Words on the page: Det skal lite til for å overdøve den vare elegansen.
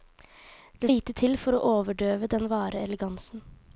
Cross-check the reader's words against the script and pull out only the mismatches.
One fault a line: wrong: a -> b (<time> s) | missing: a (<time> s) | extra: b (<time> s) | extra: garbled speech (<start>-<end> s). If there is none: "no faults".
missing: skal (0.9 s)